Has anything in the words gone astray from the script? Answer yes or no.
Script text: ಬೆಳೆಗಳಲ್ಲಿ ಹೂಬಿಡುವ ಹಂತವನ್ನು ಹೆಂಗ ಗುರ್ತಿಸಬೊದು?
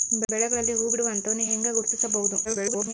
yes